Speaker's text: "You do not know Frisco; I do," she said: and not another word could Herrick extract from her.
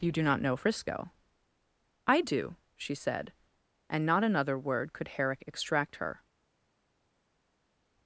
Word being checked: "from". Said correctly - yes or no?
no